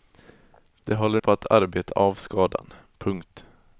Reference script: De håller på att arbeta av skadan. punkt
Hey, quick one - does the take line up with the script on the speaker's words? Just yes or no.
yes